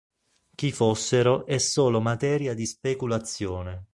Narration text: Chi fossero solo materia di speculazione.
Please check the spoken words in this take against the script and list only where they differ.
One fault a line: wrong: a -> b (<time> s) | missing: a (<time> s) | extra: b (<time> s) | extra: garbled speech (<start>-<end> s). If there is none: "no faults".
extra: è (1.4 s)